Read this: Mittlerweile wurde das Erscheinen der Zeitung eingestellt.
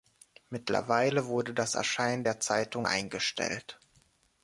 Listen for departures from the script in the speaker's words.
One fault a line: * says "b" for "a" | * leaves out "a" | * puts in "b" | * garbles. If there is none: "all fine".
all fine